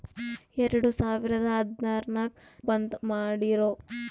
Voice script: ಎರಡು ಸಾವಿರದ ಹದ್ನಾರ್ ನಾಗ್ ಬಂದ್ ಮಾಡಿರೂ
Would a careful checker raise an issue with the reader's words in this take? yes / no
no